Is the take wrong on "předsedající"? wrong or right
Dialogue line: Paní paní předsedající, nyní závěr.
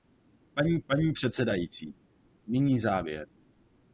right